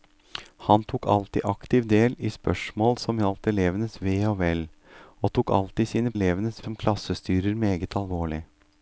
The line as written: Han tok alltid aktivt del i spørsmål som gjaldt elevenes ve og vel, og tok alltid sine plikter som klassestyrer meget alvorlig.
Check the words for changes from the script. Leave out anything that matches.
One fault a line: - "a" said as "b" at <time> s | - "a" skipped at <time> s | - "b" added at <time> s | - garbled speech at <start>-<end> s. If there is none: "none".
- "plikter" said as "elevenes" at 6.1 s